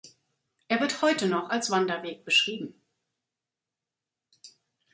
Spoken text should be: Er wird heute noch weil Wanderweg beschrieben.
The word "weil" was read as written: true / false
false